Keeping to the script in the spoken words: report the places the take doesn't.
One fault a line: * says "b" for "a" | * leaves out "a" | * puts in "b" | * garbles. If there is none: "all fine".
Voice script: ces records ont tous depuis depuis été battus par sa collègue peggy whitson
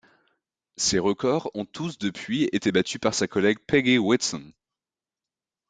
* leaves out "depuis"